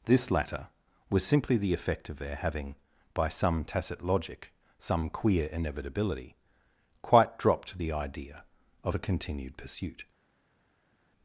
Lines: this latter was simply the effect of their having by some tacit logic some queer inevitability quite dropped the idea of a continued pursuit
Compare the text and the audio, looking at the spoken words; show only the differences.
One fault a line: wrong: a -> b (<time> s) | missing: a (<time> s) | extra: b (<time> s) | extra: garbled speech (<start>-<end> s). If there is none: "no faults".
no faults